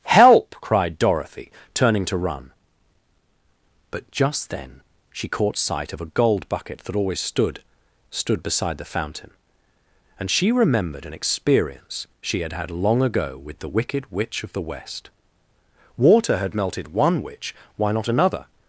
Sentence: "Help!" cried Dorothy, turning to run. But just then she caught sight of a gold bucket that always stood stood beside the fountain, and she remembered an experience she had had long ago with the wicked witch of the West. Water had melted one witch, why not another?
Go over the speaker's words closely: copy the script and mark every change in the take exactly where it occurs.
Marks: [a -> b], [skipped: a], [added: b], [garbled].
"Help!" cried Dorothy, turning to run. But just then she caught sight of a gold bucket that always stood stood beside the fountain, and she remembered an experience she had had long ago with the wicked witch of the West. Water had melted one witch, why not another?